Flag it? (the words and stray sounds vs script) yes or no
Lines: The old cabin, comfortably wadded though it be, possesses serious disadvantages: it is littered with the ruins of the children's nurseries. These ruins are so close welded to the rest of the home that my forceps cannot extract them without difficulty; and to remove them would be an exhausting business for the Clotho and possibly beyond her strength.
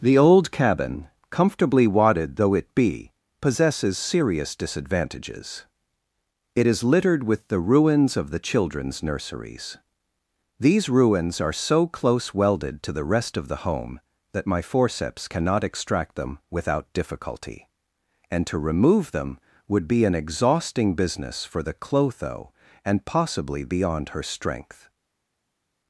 no